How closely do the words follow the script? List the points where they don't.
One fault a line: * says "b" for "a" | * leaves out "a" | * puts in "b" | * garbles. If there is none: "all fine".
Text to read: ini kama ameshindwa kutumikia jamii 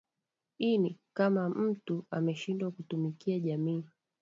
* puts in "mtu"